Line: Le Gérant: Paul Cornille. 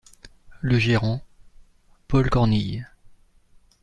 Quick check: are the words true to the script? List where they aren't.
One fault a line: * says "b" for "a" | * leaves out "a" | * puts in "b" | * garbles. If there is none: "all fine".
all fine